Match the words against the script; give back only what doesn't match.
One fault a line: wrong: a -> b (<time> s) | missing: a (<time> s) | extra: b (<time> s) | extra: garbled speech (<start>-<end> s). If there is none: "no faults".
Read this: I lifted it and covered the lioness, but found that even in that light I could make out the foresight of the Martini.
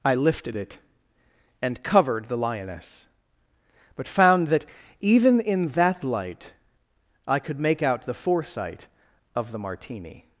no faults